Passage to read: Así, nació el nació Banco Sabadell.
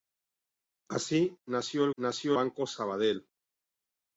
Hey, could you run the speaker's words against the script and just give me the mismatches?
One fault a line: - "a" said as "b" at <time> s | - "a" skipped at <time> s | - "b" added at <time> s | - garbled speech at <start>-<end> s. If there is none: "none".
none